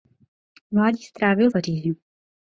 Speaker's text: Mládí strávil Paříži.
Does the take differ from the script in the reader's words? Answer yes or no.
no